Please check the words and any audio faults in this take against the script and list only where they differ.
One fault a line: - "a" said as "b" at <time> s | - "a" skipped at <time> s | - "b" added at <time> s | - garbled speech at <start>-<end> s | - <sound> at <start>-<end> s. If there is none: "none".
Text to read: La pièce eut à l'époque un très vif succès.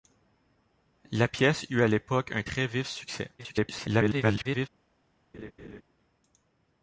- garbled speech at 3.4-4.7 s
- laugh at 5.3-5.8 s